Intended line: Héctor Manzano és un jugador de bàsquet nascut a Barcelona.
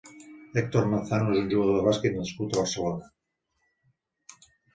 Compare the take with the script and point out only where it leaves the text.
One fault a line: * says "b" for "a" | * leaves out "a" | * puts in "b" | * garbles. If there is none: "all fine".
all fine